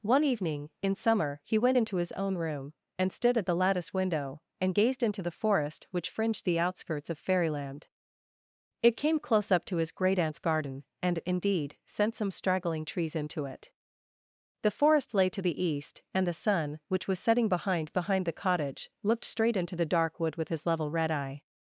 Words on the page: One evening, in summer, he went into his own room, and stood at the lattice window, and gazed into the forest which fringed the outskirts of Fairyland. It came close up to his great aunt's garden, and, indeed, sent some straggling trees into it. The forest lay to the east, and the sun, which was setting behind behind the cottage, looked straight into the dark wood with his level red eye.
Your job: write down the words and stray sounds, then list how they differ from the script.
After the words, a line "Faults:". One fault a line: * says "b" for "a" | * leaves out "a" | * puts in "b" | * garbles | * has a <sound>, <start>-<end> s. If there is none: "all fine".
One evening, in summer, he went into his own room, and stood at the lattice window, and gazed into the forest which fringed the outskirts of Fairyland. It came close up to his great aunt's garden, and, indeed, sent some straggling trees into it. The forest lay to the east, and the sun, which was setting behind behind the cottage, looked straight into the dark wood with his level red eye.
Faults:
all fine